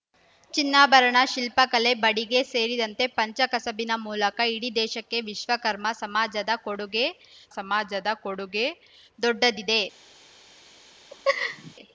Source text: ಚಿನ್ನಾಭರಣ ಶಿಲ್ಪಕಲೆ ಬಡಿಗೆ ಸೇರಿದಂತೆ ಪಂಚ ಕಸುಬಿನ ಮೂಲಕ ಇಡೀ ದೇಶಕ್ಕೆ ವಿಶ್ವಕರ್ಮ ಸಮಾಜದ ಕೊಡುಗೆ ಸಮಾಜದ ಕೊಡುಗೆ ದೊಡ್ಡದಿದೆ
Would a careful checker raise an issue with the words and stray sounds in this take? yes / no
yes